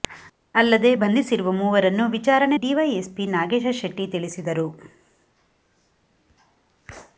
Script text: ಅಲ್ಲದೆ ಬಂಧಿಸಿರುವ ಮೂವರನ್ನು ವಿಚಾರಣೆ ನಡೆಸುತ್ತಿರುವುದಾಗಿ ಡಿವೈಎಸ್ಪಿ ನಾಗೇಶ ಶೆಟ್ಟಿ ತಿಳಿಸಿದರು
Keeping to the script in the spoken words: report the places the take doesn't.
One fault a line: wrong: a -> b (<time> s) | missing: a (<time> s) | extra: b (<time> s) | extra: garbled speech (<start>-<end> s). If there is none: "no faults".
missing: ನಡೆಸುತ್ತಿರುವುದಾಗಿ (2.6 s)